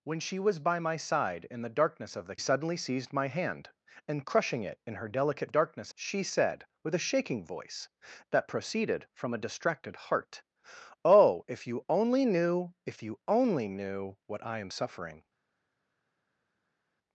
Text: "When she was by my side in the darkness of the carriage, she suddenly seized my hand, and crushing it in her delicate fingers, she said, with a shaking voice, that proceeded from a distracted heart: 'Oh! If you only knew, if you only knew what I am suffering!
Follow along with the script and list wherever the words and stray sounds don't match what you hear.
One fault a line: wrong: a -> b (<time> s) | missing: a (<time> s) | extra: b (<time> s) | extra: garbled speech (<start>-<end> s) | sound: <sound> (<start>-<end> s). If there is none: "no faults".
missing: carriage she (2.4 s)
wrong: fingers -> darkness (5.5 s)